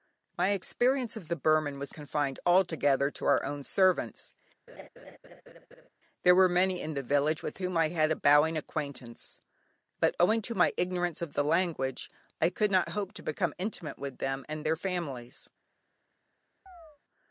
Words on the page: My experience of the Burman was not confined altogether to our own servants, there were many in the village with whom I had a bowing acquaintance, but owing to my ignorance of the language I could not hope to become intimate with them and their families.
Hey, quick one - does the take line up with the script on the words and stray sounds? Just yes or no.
no